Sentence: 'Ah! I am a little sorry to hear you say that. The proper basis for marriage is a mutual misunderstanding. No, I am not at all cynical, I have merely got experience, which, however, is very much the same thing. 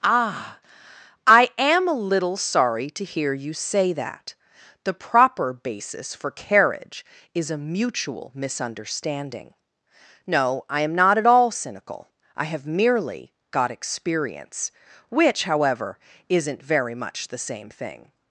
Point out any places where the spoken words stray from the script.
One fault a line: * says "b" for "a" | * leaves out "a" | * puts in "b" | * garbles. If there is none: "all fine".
* says "carriage" for "marriage"
* says "isn't" for "is"